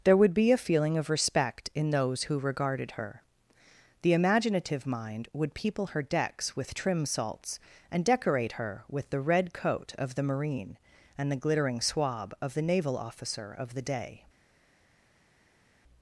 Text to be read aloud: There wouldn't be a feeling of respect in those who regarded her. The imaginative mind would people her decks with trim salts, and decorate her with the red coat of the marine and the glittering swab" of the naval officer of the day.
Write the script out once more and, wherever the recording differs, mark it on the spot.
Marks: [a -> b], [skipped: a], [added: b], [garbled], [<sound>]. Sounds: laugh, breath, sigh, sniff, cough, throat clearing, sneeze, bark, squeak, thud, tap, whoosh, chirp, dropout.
There [wouldn't -> would] be a feeling of respect in those who regarded her. The imaginative mind would people her decks with trim salts, and decorate her with the red coat of the marine and the glittering swab" of the naval officer of the day.